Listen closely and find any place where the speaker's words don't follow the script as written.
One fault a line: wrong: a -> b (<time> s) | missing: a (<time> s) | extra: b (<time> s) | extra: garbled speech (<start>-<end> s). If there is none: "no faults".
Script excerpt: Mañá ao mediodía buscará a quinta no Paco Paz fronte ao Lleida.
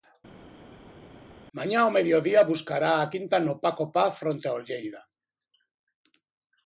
no faults